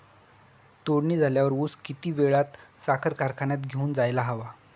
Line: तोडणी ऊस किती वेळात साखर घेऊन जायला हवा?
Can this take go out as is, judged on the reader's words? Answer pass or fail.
fail